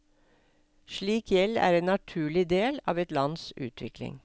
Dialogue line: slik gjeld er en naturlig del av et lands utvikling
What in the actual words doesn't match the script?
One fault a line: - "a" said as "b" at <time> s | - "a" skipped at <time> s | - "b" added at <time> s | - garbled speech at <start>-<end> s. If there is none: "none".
none